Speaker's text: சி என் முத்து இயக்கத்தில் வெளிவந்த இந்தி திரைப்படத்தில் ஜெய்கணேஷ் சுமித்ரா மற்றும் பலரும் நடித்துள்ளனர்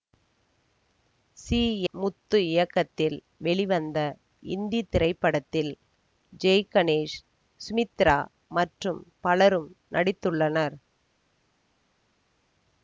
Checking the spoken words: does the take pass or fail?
fail